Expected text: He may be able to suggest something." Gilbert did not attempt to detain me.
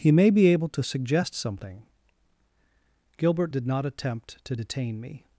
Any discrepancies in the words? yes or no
no